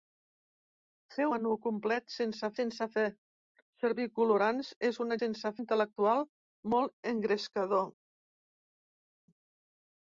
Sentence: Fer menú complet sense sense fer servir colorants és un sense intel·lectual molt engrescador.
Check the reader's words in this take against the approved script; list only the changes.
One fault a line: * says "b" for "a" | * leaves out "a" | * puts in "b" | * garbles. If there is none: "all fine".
all fine